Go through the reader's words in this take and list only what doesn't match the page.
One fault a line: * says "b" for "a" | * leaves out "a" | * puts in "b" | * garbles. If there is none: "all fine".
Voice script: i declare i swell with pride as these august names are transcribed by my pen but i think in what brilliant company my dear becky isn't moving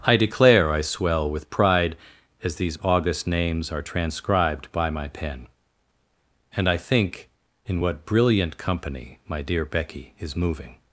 * says "and" for "but"
* says "is" for "isn't"